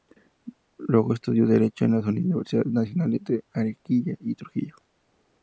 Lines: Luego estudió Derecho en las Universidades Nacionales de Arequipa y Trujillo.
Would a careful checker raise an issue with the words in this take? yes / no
no